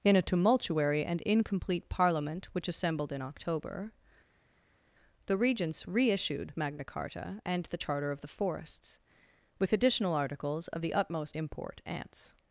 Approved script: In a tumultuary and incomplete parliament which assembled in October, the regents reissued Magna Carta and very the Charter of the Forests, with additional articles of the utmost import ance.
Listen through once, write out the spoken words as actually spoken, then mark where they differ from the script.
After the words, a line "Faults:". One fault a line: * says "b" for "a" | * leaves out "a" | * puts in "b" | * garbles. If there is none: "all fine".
In a tumultuary and incomplete parliament which assembled in October, the regents reissued Magna Carta and the Charter of the Forests, with additional articles of the utmost import ance.
Faults:
* leaves out "very"